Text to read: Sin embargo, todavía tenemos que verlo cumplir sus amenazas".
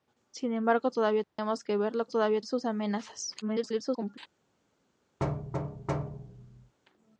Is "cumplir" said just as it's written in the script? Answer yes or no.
no